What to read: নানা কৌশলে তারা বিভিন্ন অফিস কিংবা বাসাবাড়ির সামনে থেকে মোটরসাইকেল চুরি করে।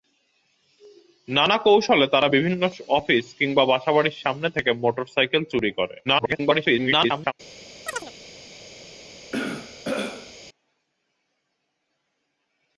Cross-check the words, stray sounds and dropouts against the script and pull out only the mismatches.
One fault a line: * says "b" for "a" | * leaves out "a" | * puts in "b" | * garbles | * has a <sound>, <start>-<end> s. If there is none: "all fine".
* garbles
* has a chirp, 7.9-8.1 s
* has a throat clearing, 9.3-10.3 s